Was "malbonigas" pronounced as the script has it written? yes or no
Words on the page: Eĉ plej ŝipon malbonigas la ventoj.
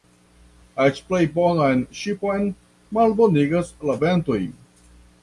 yes